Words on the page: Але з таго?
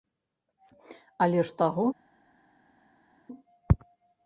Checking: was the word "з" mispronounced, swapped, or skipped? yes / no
no